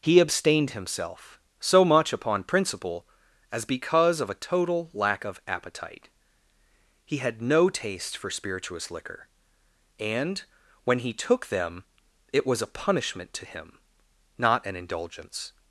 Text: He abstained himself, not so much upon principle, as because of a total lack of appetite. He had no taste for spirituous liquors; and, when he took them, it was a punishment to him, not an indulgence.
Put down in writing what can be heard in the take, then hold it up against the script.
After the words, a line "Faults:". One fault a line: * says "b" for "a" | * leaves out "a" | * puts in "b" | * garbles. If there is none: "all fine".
He abstained himself, so much upon principle, as because of a total lack of appetite. He had no taste for spirituous liquor; and, when he took them, it was a punishment to him, not an indulgence.
Faults:
* leaves out "not"
* says "liquor" for "liquors"